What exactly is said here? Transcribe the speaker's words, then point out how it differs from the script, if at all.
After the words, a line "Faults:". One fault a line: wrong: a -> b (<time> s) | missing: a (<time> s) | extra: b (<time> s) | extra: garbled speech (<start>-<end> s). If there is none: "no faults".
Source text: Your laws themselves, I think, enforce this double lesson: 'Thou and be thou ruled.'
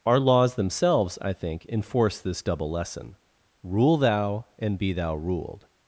Our laws themselves, I think, enforce this double lesson: 'Rule thou and be thou ruled.'
Faults:
wrong: Your -> Our (0.1 s)
extra: Rule (3.6 s)